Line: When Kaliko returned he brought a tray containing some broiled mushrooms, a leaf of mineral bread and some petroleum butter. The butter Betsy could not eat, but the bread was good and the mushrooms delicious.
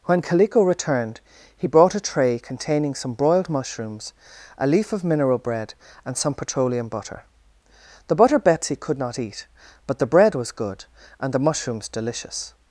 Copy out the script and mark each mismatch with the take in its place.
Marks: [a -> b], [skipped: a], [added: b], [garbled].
When Kaliko returned he brought a tray containing some broiled mushrooms, a leaf of mineral bread and some petroleum butter. The butter Betsy could not eat, but the bread was good and the mushrooms delicious.